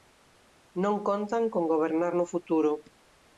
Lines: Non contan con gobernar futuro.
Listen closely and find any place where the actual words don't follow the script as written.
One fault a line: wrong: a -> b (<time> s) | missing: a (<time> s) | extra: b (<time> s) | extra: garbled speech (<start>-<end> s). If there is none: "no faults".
extra: no (2.1 s)